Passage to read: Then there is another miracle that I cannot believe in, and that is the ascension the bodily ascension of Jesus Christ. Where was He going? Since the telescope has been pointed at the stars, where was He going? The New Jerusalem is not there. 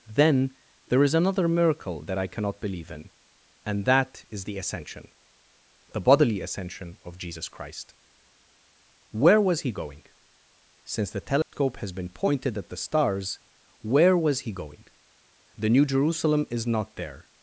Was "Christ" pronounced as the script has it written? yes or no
yes